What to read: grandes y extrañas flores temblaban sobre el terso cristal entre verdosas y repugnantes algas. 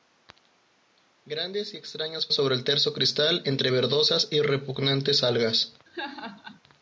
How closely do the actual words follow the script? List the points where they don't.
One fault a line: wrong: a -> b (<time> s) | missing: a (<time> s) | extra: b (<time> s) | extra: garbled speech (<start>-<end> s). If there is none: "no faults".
missing: flores temblaban (2.3 s)